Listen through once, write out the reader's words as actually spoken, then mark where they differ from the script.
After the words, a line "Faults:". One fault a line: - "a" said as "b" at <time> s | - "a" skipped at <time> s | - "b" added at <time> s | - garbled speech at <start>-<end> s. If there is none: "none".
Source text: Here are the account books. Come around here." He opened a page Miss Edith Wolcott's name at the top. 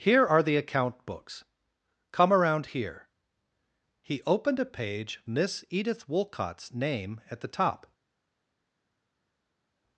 Here are the account books. Come around here." He opened a page Miss Edith Wolcott's name at the top.
Faults:
none